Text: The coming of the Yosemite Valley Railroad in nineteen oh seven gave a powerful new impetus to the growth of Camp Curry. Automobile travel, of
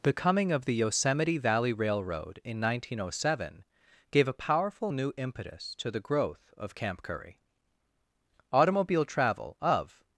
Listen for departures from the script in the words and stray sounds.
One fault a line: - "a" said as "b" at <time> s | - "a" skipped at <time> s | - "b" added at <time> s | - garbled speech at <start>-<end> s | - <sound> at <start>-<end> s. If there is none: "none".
none